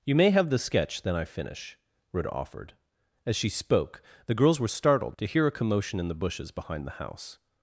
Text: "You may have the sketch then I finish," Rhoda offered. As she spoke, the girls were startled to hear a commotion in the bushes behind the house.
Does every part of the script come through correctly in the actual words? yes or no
yes